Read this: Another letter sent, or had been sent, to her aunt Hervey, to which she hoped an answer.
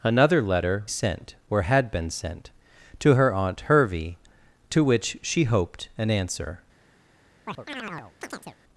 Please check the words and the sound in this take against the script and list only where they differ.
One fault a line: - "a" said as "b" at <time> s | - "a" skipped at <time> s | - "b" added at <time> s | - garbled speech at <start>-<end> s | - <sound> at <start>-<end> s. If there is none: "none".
- chirp at 7.5-8.6 s